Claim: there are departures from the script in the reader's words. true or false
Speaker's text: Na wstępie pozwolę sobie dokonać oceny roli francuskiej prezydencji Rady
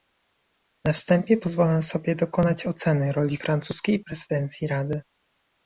false